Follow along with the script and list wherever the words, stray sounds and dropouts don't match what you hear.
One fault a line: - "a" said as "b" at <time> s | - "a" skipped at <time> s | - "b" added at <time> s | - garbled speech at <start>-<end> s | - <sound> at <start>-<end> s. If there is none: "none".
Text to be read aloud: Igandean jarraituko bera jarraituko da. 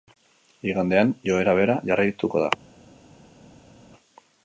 - "jarraituko" said as "joera" at 1.3 s